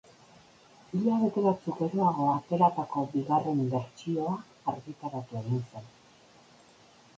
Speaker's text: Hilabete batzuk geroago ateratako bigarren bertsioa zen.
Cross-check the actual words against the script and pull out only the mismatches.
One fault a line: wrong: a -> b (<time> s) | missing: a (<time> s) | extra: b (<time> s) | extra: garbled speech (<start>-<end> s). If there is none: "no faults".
extra: argitaratu egin (4.8 s)